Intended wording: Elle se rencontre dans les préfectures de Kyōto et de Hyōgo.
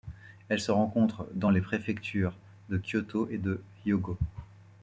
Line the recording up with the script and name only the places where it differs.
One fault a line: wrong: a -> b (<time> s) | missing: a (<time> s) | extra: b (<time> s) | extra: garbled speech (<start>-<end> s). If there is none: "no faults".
no faults